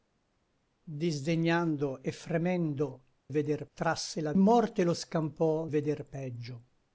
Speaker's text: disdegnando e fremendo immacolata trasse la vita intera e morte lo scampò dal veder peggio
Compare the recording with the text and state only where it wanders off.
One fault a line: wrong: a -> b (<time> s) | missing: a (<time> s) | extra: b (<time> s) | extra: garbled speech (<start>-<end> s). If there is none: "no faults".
wrong: immacolata -> veder (3.3 s)
missing: vita intera e (4.3 s)
missing: dal (5.7 s)